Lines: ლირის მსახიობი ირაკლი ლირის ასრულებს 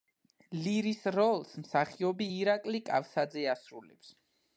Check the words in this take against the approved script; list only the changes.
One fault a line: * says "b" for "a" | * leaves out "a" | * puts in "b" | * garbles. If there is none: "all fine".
* puts in "როლს"
* says "კავსაძე" for "ლირის"